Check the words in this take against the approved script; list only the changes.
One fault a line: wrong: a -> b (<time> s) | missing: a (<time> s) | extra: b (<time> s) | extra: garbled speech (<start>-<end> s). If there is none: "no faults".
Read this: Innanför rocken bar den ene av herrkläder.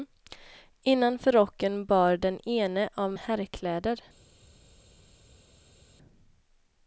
no faults